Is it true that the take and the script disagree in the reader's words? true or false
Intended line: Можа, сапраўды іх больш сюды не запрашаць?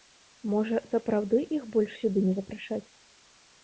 false